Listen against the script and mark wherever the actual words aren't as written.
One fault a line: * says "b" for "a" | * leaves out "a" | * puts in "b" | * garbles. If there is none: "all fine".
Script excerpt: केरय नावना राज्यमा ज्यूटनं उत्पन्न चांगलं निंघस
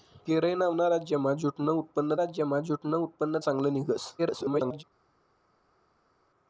* puts in "राज्यमा ज्यूटनं उत्पन्न"
* garbles